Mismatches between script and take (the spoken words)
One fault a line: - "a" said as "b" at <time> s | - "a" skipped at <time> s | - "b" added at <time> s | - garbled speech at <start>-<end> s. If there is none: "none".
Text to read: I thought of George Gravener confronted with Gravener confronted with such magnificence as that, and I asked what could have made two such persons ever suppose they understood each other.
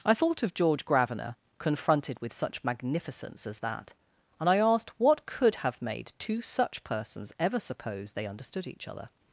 - "Gravener confronted with" skipped at 2.3 s